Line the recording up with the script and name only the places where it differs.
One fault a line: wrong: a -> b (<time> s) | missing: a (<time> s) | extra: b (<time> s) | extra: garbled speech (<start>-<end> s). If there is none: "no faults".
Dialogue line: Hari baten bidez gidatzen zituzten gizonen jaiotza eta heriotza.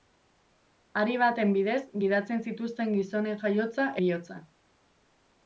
missing: eta (3.9 s)